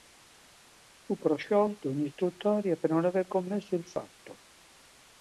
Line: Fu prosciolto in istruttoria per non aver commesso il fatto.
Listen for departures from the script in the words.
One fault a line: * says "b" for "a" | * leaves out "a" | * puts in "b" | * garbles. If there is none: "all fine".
all fine